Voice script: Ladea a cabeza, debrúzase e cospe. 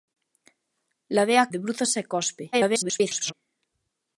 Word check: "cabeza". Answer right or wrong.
wrong